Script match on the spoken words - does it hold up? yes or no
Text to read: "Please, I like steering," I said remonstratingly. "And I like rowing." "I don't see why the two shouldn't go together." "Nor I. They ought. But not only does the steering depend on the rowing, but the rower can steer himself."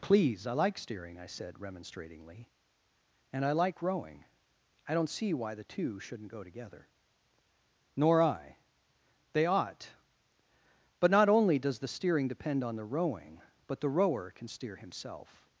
yes